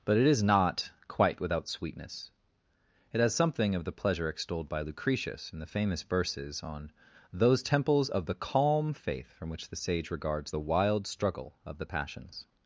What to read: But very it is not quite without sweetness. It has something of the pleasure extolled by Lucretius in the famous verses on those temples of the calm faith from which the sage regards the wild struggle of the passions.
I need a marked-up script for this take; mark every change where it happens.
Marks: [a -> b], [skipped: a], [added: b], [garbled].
But [skipped: very] it is not quite without sweetness. It has something of the pleasure extolled by Lucretius in the famous verses on those temples of the calm faith from which the sage regards the wild struggle of the passions.